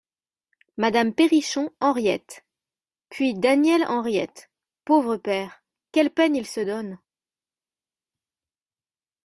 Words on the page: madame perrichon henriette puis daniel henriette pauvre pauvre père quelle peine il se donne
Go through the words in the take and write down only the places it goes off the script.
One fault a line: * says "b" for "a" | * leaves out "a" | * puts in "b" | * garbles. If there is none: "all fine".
* leaves out "pauvre"